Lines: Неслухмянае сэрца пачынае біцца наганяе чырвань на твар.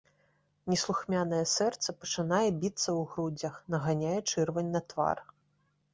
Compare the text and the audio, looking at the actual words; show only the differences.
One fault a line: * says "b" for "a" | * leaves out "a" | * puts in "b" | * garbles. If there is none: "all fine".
* puts in "ў грудзях"